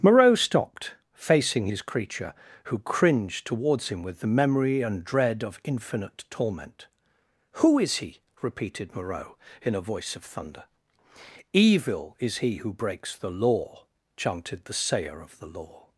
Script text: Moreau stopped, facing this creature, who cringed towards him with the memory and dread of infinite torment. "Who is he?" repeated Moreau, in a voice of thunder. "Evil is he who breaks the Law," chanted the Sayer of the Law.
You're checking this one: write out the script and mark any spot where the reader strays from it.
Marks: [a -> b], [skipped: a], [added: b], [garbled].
Moreau stopped, facing [this -> his] creature, who cringed towards him with the memory and dread of infinite torment. "Who is he?" repeated Moreau, in a voice of thunder. "Evil is he who breaks the Law," chanted the Sayer of the Law.